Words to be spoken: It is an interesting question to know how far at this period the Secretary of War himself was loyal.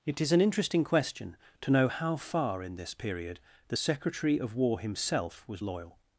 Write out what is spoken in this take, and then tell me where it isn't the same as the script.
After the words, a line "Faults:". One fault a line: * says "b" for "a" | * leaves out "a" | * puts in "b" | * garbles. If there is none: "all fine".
It is an interesting question to know how far in this period the Secretary of War himself was loyal.
Faults:
* says "in" for "at"